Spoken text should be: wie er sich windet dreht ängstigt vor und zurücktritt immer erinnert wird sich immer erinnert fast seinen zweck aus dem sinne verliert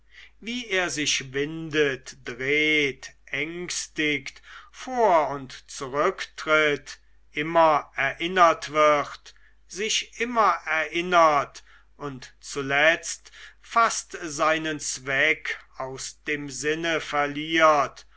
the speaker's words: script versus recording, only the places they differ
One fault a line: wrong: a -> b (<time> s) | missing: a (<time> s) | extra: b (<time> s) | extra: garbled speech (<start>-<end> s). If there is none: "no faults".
extra: und zuletzt (12.0 s)